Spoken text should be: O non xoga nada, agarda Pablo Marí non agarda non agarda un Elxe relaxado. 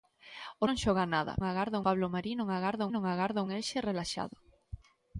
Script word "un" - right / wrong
right